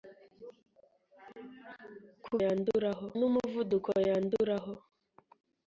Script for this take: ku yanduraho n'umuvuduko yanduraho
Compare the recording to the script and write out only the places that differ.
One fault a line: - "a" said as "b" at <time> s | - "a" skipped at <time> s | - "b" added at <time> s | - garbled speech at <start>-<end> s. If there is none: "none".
none